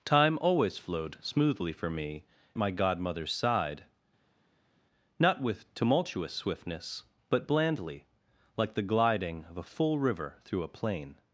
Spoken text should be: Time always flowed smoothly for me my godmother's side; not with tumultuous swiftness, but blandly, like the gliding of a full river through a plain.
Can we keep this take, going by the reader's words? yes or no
yes